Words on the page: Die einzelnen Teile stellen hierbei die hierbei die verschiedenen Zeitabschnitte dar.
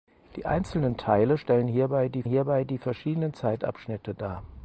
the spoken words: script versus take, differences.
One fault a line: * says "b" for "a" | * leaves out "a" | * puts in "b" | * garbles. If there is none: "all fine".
all fine